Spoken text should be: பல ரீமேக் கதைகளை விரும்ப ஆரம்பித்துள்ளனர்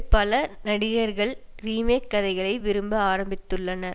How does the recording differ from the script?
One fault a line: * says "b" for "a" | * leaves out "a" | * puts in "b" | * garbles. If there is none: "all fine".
* puts in "நடிகர்கள்"